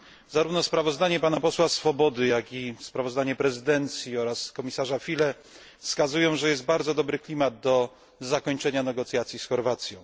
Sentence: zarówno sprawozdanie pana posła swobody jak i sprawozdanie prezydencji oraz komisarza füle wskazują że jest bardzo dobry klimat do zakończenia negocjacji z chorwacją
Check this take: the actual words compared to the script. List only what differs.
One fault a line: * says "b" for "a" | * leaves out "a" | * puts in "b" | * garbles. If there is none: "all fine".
all fine